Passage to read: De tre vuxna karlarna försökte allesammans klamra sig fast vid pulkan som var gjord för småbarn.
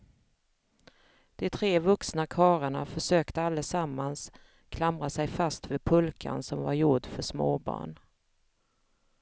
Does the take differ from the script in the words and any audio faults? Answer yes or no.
no